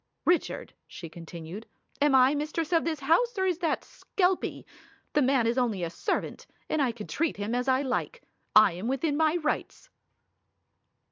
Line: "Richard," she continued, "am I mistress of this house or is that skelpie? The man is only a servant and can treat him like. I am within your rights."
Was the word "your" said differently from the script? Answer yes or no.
yes